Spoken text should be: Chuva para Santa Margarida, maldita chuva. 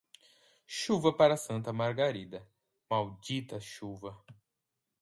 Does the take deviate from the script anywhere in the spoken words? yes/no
no